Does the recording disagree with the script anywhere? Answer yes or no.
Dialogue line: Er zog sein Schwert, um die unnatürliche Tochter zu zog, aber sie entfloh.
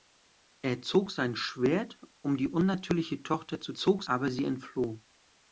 no